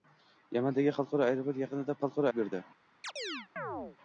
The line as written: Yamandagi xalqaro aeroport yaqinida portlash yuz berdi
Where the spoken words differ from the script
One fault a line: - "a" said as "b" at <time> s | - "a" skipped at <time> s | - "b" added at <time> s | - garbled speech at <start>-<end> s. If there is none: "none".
- "portlash" said as "xalqaro" at 2.0 s